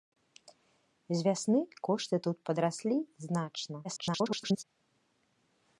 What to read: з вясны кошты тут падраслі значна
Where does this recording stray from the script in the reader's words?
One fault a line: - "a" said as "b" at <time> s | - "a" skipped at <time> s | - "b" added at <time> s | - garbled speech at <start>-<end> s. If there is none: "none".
- garbled speech at 3.8-4.6 s